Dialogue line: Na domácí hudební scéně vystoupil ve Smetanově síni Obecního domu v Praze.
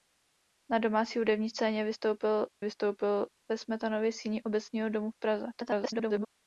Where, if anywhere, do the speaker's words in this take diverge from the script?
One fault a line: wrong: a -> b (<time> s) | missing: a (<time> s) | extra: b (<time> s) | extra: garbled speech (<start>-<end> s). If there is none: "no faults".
extra: vystoupil (2.6 s)
extra: garbled speech (5.5-6.3 s)